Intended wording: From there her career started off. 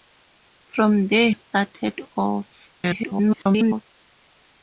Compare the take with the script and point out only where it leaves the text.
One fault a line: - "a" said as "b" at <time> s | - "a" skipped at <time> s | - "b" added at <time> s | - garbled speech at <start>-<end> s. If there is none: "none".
- "her career" skipped at 1.3 s
- garbled speech at 2.8-3.8 s